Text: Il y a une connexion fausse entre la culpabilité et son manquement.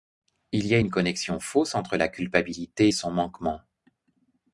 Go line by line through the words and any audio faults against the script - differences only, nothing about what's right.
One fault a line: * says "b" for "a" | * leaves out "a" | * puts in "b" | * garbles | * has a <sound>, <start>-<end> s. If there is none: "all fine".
all fine